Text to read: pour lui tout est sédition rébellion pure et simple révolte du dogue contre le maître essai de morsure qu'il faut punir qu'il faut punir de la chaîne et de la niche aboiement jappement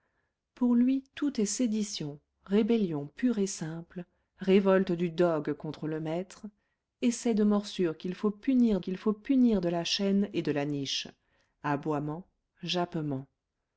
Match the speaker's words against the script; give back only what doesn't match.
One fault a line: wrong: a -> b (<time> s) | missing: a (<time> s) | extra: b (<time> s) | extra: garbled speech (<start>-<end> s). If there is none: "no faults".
no faults